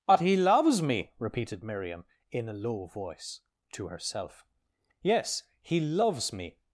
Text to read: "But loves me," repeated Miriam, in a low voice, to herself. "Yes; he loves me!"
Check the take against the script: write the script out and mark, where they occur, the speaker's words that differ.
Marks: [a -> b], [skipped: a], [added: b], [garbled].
"But [added: he] loves me," repeated Miriam, in a low voice, to herself. "Yes; he loves me!"